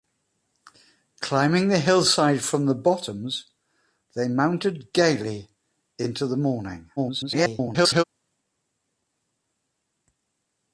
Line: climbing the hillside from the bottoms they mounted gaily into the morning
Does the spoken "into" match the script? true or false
true